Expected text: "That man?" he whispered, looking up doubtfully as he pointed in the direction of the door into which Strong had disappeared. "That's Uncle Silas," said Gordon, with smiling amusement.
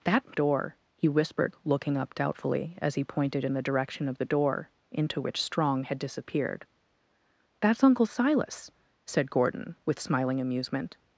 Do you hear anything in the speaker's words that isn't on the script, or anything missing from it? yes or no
yes